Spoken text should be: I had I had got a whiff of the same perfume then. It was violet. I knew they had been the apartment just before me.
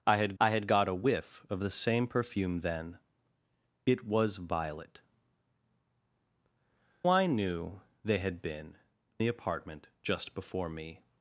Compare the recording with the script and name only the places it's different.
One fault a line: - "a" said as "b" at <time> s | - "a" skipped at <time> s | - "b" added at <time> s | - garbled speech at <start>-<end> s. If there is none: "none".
none